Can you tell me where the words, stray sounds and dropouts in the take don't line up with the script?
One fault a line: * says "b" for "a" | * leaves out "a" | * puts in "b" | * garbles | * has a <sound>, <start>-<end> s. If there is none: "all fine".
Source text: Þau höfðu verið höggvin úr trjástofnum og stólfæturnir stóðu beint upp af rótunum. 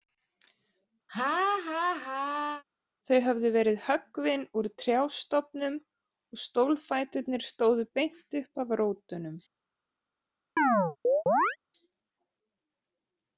* has a laugh, 1.1-2.6 s
* has a chirp, 10.6-11.6 s